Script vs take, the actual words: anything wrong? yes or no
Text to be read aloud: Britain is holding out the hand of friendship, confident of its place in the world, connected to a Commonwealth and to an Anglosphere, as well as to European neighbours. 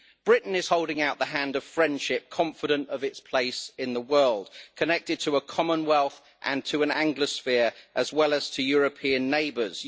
no